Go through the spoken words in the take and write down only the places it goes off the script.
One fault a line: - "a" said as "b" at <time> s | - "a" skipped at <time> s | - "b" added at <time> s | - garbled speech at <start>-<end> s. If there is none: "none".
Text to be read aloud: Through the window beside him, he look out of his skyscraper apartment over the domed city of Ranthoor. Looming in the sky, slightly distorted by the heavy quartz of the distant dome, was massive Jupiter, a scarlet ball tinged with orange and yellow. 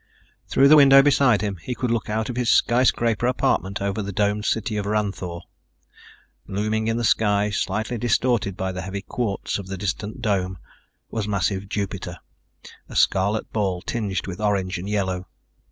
- "could" added at 1.7 s